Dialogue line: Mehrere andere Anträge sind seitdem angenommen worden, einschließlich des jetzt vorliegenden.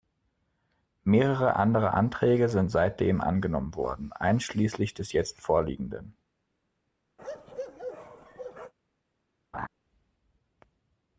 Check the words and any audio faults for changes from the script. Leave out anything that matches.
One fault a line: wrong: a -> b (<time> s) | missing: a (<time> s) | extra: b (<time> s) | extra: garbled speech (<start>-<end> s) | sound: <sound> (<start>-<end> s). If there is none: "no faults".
sound: bark (7.2-8.7 s)
sound: laugh (9.5-9.7 s)